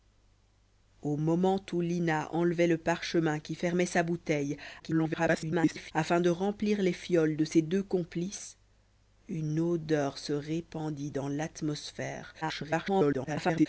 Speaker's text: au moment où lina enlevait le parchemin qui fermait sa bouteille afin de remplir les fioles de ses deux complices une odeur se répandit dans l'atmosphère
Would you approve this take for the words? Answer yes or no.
no